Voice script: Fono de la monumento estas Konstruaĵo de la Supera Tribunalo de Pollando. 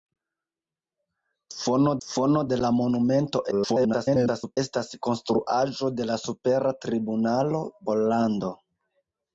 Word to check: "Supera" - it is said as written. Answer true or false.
true